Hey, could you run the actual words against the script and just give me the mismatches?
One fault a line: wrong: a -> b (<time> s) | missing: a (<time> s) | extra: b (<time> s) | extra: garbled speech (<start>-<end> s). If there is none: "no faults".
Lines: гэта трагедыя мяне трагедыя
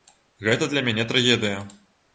wrong: трагедыя -> для (0.7 s)